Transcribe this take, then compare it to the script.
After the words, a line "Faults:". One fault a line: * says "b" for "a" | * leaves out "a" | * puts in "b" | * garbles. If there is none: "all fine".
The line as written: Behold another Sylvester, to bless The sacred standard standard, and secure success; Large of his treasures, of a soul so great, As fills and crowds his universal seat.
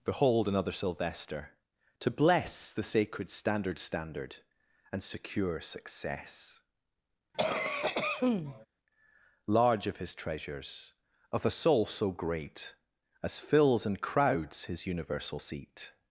Behold another Sylvester, to bless The sacred standard standard, and secure success; Large of his treasures, of a soul so great, As fills and crowds his universal seat.
Faults:
all fine